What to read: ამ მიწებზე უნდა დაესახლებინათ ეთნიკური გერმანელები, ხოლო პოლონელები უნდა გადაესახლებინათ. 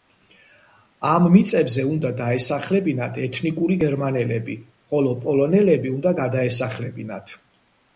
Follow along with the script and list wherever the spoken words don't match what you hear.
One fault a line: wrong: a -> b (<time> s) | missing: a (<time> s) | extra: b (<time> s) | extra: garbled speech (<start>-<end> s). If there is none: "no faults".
no faults